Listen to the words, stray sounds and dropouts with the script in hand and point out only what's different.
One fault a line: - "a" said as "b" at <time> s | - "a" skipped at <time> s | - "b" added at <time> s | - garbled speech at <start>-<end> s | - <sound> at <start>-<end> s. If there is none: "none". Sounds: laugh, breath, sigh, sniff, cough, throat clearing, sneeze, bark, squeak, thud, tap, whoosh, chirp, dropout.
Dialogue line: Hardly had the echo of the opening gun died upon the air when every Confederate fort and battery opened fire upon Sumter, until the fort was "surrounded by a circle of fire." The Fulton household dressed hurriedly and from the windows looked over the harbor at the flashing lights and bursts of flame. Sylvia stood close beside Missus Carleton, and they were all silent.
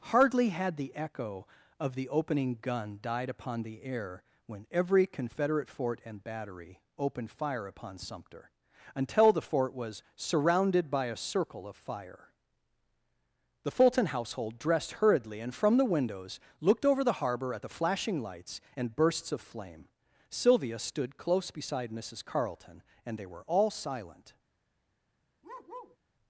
- bark at 25.4-26.0 s